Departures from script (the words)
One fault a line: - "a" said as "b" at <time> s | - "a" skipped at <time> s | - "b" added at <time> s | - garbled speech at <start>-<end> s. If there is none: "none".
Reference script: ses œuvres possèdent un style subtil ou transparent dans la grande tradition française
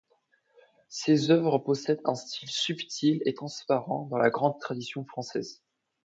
- "ou" said as "et" at 3.2 s